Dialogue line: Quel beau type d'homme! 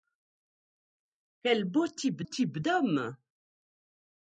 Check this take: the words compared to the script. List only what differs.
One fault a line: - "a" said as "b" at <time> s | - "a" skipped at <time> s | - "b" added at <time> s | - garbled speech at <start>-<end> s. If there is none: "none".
- "type" added at 2.2 s